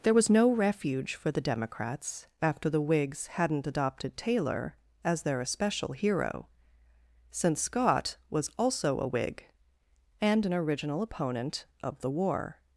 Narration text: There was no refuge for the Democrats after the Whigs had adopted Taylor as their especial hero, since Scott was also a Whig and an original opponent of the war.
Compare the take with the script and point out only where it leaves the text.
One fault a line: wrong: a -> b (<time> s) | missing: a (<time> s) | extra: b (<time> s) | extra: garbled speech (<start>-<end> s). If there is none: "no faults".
wrong: had -> hadn't (3.3 s)